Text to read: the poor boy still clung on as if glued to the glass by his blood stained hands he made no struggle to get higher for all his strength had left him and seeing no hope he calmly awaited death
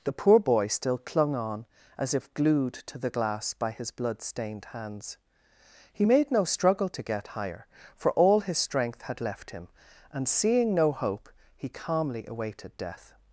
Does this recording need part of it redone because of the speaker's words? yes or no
no